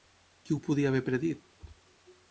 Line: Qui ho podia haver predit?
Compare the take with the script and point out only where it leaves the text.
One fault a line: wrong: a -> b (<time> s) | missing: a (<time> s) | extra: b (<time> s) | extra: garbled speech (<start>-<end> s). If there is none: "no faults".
no faults